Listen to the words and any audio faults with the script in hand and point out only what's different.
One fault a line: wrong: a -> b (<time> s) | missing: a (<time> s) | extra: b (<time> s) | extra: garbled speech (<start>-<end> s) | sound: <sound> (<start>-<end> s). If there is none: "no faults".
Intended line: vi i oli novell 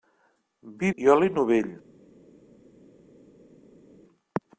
no faults